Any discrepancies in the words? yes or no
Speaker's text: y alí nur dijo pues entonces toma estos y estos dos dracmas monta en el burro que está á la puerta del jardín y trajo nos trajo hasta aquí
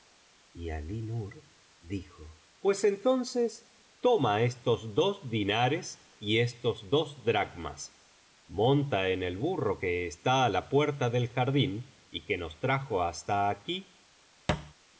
yes